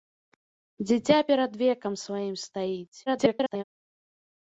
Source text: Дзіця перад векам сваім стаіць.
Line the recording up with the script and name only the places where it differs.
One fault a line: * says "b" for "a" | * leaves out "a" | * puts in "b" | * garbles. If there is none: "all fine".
* garbles